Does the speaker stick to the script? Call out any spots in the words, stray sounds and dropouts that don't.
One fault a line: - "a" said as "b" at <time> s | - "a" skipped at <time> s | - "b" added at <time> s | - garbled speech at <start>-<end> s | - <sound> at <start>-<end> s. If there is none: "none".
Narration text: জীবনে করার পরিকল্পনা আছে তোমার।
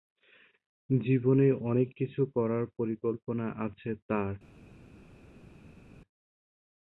- "অনেক কিছু" added at 1.6 s
- "তোমার" said as "তার" at 4.1 s